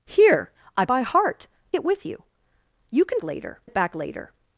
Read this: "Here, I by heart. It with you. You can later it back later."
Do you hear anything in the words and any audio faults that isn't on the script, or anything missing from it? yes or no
no